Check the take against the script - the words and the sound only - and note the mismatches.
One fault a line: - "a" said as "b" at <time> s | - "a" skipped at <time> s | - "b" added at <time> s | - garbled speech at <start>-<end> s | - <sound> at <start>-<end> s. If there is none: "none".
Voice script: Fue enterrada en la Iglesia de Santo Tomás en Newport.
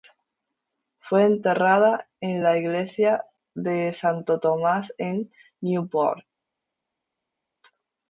none